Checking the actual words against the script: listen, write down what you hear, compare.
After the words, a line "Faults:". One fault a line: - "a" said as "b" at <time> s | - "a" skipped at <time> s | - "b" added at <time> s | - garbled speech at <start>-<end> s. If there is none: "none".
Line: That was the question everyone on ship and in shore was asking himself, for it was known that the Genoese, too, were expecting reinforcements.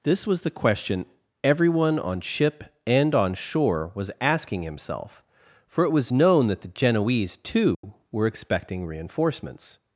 This was the question everyone on ship and on shore was asking himself, for it was known that the Genoese, too, were expecting reinforcements.
Faults:
- "That" said as "This" at 0.0 s
- "in" said as "on" at 3.1 s